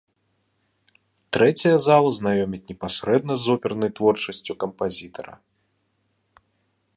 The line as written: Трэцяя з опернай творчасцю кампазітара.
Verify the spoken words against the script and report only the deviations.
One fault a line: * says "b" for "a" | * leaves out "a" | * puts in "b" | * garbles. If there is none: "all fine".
* puts in "зала знаёміць непасрэдна"